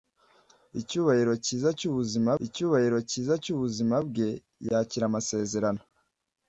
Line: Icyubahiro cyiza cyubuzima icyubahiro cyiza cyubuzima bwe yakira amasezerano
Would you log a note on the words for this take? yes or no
no